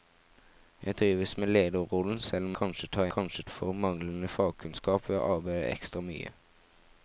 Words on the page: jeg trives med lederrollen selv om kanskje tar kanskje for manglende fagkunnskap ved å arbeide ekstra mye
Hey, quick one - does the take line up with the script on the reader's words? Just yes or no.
yes